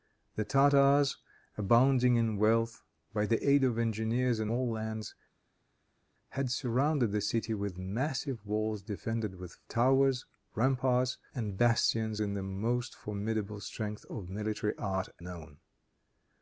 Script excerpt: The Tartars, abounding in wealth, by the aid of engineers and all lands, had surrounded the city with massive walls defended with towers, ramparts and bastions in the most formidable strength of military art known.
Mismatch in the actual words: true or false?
false